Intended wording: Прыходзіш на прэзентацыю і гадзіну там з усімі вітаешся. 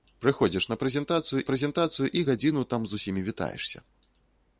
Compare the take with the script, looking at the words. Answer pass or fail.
fail